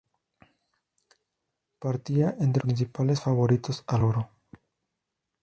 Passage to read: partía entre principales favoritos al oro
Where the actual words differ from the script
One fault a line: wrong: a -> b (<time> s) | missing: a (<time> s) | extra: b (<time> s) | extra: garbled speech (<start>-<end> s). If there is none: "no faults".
no faults